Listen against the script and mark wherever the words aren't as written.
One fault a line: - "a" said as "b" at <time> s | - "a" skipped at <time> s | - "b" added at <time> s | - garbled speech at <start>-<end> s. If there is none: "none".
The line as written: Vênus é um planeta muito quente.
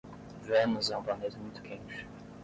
none